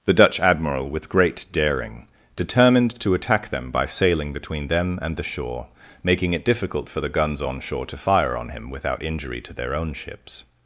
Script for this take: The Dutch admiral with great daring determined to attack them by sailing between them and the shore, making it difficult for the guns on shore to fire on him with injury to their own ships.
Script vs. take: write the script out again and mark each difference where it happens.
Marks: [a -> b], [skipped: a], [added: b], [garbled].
The Dutch admiral with great daring determined to attack them by sailing between them and the shore, making it difficult for the guns on shore to fire on him [with -> without] injury to their own ships.